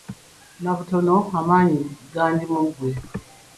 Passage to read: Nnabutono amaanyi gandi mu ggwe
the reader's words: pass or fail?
pass